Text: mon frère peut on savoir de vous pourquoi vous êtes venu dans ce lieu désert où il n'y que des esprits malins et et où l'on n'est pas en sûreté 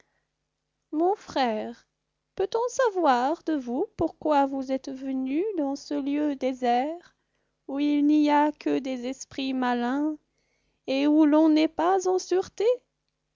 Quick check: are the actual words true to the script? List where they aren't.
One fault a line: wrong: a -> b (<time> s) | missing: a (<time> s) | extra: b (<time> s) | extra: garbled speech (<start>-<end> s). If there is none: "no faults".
extra: a (8.3 s)
missing: et (11.1 s)